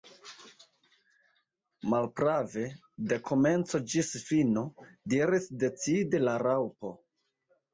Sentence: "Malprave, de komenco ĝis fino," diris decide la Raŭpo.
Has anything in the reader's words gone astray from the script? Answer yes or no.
no